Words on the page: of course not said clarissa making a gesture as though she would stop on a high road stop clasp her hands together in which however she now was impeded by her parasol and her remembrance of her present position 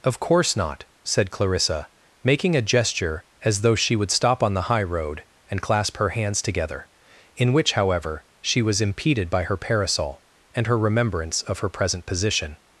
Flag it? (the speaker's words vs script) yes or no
yes